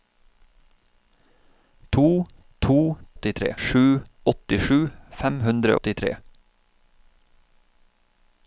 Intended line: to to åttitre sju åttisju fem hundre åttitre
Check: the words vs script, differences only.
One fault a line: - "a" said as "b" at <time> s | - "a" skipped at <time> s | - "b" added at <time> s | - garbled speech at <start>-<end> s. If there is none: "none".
none